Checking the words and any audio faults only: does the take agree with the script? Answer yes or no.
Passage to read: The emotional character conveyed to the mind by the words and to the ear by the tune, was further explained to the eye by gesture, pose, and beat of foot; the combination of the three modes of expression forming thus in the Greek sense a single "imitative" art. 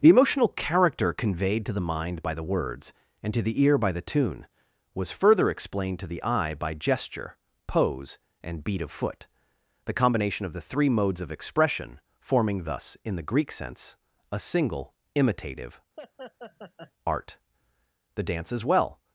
no